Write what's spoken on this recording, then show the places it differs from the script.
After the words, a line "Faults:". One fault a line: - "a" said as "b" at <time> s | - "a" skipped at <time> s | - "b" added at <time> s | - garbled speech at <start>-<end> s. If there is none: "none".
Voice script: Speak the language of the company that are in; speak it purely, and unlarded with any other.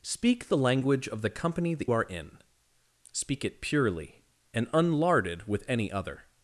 Speak the language of the company that are in; speak it purely, and unlarded with any other.
Faults:
none